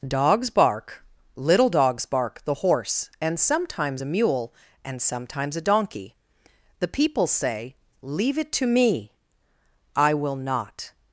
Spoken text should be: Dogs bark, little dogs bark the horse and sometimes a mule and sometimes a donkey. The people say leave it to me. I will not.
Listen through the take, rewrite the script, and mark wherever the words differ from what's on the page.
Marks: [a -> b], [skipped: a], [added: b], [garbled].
Dogs bark, little dogs bark the horse and sometimes a mule and sometimes a donkey. The people say leave it to me. I will not.